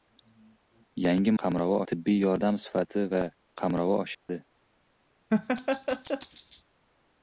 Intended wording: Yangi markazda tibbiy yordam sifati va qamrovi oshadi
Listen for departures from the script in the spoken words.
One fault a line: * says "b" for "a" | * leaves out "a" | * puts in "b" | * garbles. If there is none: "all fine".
* says "qamrovi" for "markazda"